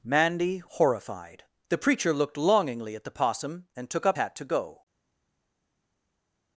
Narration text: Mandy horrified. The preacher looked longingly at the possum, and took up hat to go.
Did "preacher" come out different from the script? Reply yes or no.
no